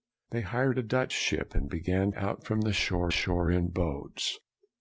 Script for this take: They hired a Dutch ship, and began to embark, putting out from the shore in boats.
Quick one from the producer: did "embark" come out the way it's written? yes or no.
no